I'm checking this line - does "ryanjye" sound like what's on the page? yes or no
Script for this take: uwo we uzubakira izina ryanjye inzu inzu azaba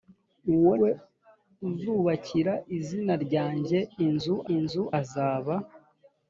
yes